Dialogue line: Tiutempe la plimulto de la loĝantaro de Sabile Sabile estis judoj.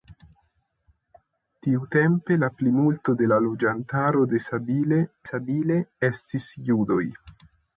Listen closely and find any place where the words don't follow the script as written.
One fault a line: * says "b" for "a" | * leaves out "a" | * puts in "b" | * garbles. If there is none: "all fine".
all fine